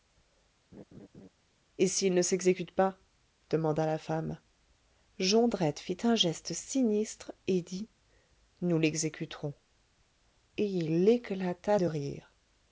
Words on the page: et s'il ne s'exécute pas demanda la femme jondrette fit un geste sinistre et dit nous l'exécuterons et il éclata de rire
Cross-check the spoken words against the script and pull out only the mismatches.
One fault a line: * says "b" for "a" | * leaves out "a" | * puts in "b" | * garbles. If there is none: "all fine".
all fine